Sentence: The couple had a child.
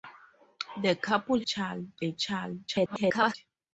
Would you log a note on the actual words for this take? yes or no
yes